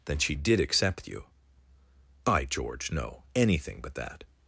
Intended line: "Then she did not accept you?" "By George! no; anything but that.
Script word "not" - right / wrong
wrong